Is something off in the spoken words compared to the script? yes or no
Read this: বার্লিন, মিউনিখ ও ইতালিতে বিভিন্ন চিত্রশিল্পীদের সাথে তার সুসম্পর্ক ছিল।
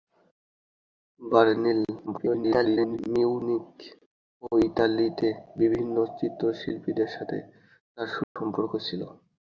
yes